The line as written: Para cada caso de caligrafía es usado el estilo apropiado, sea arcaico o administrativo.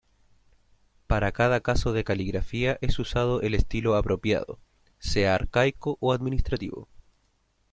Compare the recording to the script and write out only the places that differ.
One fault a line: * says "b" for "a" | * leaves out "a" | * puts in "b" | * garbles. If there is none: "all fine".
all fine